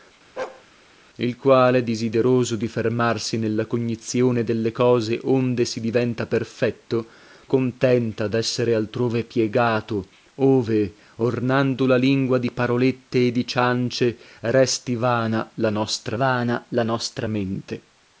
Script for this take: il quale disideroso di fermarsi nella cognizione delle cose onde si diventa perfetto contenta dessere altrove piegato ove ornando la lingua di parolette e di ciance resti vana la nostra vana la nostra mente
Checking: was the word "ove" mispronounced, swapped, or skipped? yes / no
no